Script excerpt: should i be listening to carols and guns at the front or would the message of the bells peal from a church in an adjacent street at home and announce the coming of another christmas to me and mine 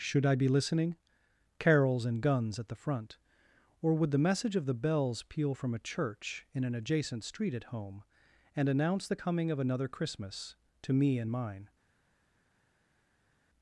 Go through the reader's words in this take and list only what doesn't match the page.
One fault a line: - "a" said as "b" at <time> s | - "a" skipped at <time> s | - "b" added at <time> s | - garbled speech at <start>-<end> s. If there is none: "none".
- "to" skipped at 0.9 s